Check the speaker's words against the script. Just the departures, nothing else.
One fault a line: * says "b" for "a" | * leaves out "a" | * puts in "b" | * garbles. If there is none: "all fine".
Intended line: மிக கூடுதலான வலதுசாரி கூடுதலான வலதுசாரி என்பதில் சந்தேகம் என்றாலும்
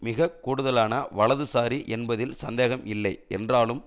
* leaves out "கூடுதலான வலதுசாரி"
* puts in "இல்லை"